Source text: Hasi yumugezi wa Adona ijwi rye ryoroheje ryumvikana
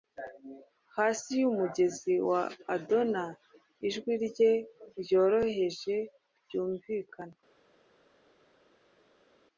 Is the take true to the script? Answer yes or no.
yes